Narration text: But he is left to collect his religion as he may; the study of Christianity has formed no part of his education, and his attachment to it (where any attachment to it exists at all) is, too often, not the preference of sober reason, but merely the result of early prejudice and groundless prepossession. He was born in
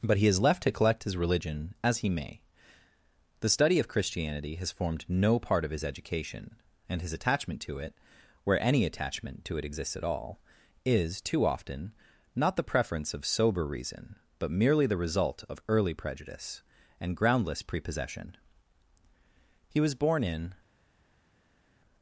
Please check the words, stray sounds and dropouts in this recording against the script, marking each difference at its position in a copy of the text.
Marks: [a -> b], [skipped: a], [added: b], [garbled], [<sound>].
But he is left to collect his religion as he may; the study of Christianity has formed no part of his education, and his attachment to it (where any attachment to it exists at all) is, too often, not the preference of sober reason, but merely the result of early prejudice and groundless prepossession. He was born in